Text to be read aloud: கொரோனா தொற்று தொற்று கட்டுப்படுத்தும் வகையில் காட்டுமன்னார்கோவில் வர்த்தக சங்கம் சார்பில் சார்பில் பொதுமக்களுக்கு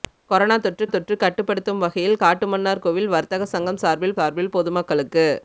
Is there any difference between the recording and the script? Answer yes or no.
no